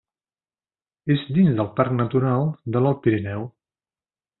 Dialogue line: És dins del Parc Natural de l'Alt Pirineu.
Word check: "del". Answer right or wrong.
right